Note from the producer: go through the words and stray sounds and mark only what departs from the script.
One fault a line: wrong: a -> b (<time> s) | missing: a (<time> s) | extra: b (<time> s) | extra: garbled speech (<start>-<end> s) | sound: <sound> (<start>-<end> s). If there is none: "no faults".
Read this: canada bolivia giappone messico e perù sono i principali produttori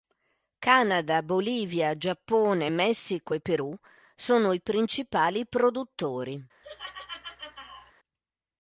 sound: laugh (6.6-7.9 s)